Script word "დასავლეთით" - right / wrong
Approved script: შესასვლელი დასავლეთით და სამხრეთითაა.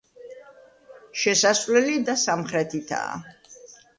wrong